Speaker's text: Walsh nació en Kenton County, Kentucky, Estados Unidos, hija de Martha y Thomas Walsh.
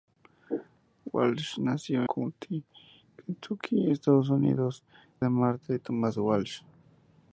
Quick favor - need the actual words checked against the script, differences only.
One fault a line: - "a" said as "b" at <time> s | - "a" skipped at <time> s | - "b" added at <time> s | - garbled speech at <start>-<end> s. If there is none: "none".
- "en Kenton" skipped at 2.1 s
- "hija" skipped at 4.8 s